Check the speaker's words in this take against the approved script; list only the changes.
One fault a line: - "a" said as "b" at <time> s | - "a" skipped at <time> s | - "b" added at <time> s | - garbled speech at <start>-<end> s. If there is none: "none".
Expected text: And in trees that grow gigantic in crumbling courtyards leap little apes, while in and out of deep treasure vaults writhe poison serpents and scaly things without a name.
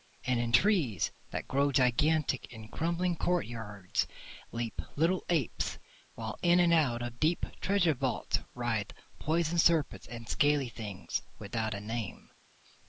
none